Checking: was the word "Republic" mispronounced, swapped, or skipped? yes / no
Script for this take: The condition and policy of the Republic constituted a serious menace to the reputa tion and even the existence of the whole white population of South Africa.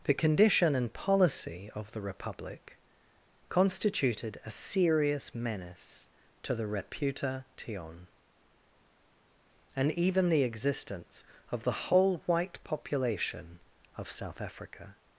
no